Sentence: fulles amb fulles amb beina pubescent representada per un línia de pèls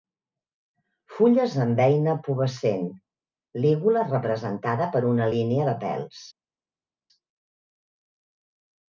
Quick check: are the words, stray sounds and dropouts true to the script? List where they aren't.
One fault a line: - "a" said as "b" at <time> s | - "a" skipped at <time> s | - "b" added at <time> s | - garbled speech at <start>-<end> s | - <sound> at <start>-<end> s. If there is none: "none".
- "fulles amb" skipped at 1.8 s
- "lígula" added at 3.6 s
- "un" said as "una" at 5.1 s